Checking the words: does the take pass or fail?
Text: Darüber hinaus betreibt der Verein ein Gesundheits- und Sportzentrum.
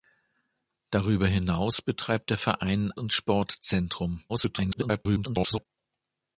fail